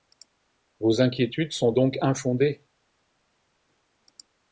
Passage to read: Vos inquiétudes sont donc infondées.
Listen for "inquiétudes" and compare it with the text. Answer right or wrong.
right